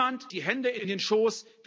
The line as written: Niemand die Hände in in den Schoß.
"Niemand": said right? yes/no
yes